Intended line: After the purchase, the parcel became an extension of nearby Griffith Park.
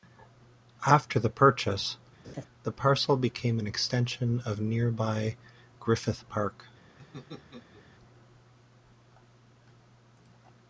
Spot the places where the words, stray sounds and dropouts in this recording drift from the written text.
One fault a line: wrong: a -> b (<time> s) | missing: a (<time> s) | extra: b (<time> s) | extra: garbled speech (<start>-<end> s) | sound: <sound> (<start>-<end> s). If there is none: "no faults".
sound: laugh (2.2-2.5 s)
sound: laugh (7.0-7.8 s)